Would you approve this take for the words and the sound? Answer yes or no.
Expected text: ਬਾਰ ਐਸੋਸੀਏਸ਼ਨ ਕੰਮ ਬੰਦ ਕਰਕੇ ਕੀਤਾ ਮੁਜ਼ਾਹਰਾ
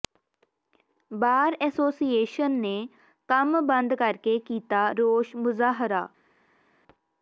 no